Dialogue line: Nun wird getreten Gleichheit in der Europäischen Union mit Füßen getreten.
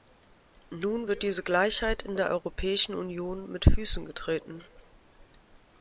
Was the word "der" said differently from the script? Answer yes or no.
no